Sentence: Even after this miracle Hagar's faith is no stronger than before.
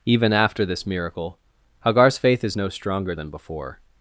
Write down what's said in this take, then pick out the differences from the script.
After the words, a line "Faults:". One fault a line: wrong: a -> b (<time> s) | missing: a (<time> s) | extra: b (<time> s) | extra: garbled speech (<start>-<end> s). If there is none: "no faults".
Even after this miracle Hagar's faith is no stronger than before.
Faults:
no faults